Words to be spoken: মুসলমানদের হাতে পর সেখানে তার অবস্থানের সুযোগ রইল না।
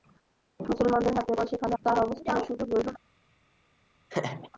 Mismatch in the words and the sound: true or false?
true